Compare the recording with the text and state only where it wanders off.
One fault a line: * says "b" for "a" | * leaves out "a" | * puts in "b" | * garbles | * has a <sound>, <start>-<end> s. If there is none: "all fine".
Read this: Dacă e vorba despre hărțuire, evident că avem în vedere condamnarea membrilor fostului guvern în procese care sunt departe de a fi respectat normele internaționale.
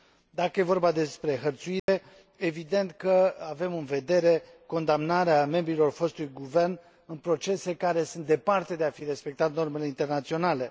* has a dropout, 1.8-1.9 s